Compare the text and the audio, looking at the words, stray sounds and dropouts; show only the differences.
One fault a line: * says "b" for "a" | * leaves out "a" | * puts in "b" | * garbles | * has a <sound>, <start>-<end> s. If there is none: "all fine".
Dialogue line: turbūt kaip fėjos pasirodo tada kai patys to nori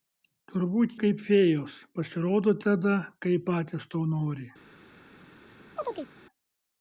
* has a chirp, 5.8-6.1 s